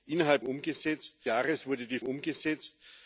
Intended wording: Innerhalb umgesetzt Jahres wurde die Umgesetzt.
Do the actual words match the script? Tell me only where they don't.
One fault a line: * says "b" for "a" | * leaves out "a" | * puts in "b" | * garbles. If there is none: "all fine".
all fine